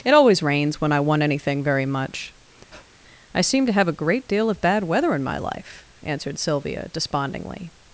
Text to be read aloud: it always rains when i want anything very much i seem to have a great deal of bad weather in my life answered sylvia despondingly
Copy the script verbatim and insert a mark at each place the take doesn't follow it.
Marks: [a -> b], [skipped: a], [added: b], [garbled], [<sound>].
it always rains when i want anything very much [breath] i seem to have a great deal of bad weather in my life answered sylvia despondingly